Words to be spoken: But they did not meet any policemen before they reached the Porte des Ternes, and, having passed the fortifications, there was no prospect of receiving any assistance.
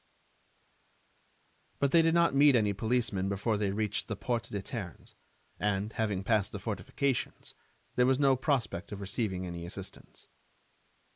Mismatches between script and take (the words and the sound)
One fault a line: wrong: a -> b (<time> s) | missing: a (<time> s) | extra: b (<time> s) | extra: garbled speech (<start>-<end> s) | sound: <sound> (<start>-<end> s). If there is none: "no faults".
no faults